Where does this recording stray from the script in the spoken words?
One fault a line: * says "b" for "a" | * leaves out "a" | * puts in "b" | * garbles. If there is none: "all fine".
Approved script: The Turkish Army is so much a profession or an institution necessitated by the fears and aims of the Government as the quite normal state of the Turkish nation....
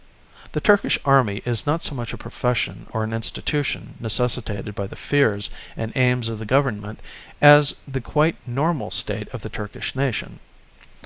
* puts in "not"